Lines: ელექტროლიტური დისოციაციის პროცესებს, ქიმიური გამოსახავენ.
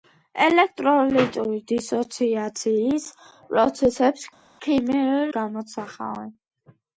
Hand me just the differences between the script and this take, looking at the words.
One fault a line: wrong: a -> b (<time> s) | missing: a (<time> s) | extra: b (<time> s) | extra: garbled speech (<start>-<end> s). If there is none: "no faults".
no faults